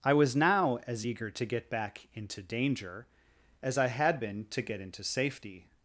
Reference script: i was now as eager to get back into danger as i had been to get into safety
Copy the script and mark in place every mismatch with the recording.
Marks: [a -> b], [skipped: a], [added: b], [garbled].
i was now as eager to get back into danger as i had been to get into safety